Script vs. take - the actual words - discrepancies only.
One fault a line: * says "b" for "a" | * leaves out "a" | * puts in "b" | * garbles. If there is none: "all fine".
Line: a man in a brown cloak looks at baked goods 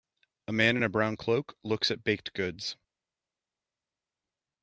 all fine